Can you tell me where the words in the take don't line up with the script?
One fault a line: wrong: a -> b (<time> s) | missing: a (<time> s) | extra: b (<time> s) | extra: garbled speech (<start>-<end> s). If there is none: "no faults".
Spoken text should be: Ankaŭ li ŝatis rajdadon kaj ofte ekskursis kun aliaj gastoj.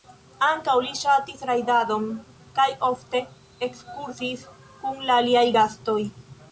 extra: la (5.1 s)